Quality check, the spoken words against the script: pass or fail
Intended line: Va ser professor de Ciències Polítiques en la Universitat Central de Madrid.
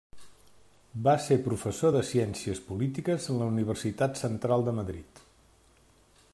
pass